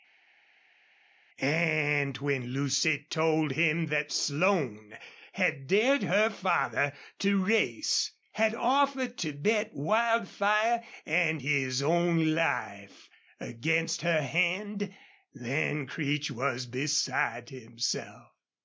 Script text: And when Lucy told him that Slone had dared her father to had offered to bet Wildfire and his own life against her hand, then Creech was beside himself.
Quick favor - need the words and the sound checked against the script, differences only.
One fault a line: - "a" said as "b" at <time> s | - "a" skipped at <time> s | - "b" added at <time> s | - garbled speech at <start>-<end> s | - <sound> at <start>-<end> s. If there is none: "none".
- "race" added at 7.4 s